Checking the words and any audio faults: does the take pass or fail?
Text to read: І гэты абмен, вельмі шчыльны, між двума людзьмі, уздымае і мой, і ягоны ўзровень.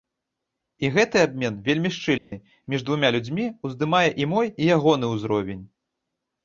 fail